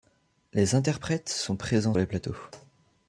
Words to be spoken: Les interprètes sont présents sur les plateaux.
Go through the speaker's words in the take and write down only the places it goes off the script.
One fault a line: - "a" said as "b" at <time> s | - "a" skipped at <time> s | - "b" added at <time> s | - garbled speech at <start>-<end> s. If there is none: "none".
- "sur" skipped at 1.9 s